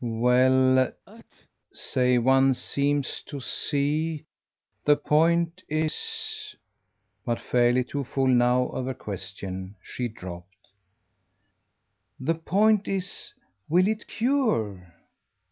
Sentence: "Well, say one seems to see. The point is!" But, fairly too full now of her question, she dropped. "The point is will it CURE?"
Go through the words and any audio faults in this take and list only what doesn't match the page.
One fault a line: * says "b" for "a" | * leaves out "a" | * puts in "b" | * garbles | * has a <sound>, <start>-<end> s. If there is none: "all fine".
* has a sneeze, 1.1-1.5 s